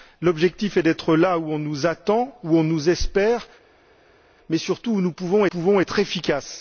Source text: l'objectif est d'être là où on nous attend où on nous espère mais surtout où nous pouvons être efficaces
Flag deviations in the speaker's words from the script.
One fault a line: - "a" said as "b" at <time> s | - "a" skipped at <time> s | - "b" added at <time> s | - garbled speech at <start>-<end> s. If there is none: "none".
- "pouvons" added at 5.4 s